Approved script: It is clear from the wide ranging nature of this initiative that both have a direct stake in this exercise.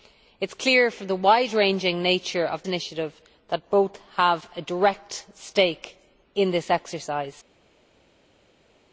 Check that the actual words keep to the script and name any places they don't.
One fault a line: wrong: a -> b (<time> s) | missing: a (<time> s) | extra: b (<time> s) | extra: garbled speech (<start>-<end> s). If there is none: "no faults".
missing: this (2.6 s)